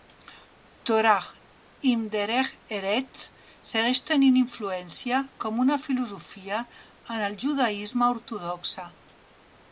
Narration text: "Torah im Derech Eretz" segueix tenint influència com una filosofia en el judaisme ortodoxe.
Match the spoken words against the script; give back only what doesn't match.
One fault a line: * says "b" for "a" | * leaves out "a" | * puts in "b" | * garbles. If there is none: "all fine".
all fine